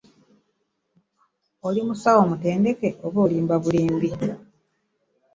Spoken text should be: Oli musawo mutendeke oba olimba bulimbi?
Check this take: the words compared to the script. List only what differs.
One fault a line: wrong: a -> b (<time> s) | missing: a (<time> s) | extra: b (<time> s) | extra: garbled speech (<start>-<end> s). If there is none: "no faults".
no faults